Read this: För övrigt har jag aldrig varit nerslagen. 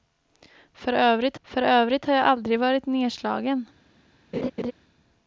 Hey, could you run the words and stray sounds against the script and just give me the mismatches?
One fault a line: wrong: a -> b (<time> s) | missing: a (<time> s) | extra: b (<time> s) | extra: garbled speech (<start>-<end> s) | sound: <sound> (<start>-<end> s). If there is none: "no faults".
extra: för övrigt (1.4 s)
sound: laugh (4.3-4.7 s)